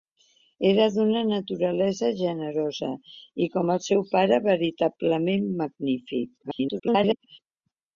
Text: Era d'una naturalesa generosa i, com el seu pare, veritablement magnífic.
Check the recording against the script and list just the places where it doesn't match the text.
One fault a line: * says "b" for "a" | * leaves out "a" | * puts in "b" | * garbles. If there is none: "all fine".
* garbles